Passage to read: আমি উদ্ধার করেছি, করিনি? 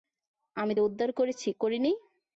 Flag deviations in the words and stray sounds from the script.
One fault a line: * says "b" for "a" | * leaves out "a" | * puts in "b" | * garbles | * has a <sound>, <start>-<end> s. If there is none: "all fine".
all fine